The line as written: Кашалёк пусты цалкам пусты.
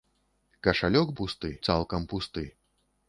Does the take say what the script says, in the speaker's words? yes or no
yes